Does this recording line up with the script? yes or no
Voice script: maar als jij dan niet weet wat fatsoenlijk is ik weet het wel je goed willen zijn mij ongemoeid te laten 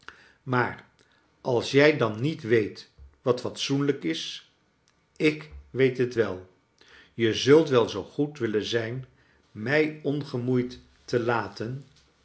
no